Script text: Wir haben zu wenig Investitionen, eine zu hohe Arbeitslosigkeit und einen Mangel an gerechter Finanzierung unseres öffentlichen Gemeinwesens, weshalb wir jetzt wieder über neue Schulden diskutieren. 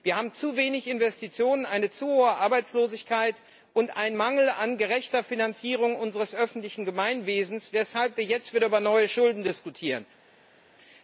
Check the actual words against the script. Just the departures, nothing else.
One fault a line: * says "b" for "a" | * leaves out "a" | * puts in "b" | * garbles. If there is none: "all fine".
all fine